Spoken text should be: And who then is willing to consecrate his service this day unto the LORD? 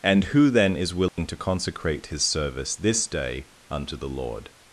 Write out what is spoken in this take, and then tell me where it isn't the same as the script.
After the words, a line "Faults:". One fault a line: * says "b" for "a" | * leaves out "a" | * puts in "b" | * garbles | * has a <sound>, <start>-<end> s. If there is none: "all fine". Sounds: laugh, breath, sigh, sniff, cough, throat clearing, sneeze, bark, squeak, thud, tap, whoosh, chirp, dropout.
And who then is willing to consecrate his service this day unto the LORD?
Faults:
* has a dropout, 1.1-1.2 s